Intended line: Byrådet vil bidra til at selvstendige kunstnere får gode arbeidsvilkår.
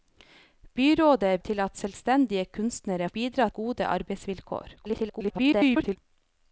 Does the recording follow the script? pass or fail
fail